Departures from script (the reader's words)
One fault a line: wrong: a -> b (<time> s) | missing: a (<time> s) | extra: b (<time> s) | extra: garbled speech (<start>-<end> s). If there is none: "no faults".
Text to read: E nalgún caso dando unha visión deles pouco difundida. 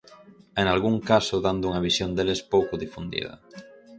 no faults